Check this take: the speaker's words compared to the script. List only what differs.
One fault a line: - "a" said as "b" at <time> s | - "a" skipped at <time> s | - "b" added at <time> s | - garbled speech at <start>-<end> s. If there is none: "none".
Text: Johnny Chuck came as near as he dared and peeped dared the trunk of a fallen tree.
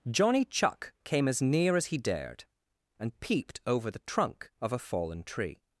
- "dared" said as "over" at 3.7 s